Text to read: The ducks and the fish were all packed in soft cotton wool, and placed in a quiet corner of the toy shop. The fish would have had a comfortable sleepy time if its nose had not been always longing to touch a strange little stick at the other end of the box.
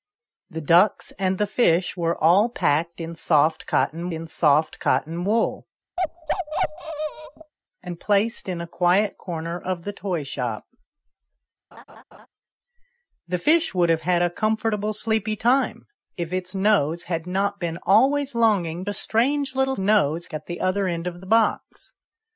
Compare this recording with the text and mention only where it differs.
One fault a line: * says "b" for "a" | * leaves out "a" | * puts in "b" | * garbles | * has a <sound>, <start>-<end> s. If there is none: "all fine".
* puts in "in soft cotton"
* has a bark, 6.0-7.5 s
* has a laugh, 11.7-12.3 s
* leaves out "to touch"
* says "nose" for "stick"